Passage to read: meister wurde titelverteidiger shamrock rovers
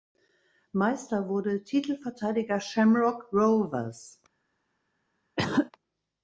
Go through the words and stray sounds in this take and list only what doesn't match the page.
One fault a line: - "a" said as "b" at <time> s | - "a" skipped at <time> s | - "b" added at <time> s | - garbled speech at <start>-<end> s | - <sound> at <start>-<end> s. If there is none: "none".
- cough at 5.4-5.7 s